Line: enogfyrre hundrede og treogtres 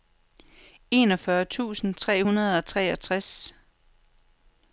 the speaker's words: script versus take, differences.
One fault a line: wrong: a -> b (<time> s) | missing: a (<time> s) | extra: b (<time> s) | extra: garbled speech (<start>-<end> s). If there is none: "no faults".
extra: tusind tre (1.4 s)